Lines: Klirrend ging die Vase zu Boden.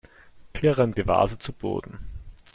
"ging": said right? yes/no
no